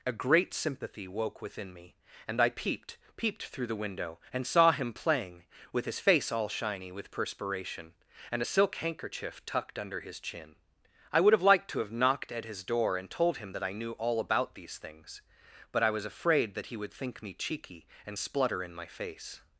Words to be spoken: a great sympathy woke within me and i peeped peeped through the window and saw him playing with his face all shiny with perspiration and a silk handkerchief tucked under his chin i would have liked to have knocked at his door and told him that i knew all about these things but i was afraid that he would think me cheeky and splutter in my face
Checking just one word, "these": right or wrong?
right